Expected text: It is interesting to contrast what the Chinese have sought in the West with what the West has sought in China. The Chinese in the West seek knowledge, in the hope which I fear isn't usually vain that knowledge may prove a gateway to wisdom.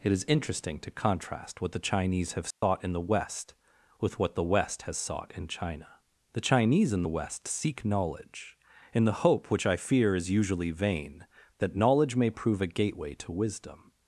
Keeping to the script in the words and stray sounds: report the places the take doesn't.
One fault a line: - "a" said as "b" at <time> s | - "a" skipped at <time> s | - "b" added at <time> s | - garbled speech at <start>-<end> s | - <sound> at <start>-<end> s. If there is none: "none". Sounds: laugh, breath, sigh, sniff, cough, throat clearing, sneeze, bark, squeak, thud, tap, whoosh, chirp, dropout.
- dropout at 2.5-2.6 s
- "isn't" said as "is" at 10.1 s